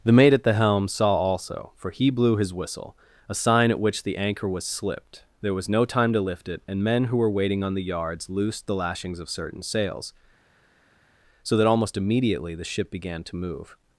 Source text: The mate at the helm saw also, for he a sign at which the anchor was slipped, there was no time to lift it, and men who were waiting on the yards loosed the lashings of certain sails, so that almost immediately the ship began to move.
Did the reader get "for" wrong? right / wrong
right